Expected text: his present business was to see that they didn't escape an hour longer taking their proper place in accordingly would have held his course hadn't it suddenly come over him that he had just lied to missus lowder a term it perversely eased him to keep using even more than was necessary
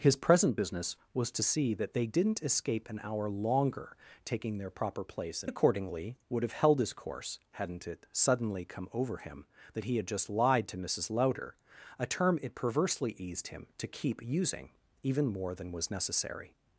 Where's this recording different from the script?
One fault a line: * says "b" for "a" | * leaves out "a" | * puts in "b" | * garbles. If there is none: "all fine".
all fine